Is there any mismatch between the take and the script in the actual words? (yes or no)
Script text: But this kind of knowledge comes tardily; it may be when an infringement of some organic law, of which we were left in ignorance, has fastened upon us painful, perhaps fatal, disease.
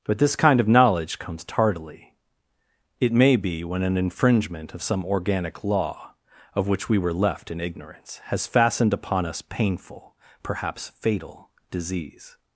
no